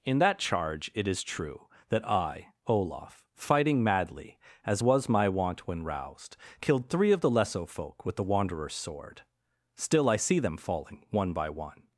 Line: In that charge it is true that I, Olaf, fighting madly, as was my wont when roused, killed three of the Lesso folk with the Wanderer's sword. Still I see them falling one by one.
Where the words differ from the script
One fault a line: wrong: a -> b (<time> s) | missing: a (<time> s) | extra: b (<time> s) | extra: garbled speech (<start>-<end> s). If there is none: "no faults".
no faults